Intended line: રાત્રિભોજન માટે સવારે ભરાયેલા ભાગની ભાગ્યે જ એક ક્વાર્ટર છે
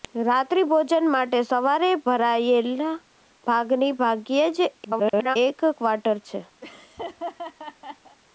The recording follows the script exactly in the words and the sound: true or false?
false